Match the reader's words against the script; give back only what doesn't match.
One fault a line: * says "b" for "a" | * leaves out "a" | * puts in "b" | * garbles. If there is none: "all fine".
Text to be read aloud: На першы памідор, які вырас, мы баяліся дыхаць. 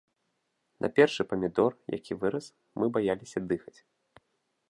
all fine